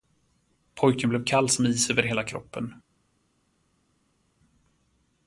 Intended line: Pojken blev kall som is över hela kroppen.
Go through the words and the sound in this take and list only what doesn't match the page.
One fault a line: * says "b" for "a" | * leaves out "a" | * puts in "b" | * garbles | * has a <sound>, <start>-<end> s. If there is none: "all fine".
all fine